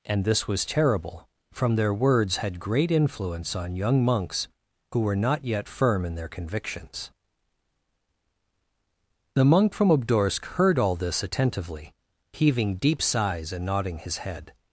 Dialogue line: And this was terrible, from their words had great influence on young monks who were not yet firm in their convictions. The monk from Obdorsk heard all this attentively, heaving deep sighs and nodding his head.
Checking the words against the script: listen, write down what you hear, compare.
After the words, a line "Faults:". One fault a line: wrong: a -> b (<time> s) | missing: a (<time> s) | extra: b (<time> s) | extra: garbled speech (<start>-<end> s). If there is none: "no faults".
And this was terrible, from their words had great influence on young monks who were not yet firm in their convictions. The monk from Obdorsk heard all this attentively, heaving deep sighs and nodding his head.
Faults:
no faults